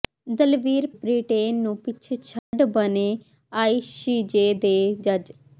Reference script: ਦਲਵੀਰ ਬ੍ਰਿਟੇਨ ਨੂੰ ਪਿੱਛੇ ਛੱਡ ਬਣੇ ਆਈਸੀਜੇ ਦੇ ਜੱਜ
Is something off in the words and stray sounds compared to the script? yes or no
yes